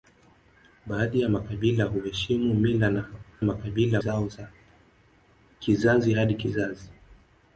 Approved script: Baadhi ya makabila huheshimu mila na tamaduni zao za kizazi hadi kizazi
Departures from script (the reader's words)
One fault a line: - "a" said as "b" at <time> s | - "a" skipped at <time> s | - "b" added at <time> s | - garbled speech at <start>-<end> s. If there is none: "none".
- "tamaduni" said as "makabila" at 3.4 s